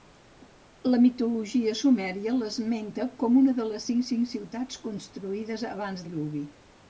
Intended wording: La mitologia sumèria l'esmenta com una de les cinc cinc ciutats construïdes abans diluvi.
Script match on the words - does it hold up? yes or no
yes